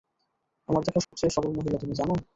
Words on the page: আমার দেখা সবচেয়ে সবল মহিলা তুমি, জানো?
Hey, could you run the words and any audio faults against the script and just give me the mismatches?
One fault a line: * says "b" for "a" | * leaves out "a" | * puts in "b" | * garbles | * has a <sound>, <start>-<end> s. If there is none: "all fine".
* has a dropout, 1.0-1.1 s